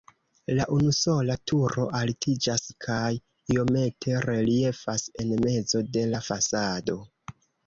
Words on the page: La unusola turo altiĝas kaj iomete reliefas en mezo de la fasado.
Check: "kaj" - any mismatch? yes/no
no